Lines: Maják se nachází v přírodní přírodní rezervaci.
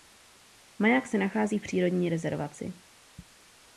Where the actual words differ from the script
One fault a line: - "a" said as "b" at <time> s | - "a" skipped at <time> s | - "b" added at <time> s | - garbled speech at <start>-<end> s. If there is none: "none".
- "přírodní" skipped at 2.1 s